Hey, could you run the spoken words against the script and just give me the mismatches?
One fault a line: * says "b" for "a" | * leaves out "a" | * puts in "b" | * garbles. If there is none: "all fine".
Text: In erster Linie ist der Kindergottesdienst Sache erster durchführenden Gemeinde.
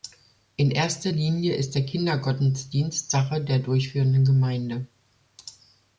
* says "der" for "erster"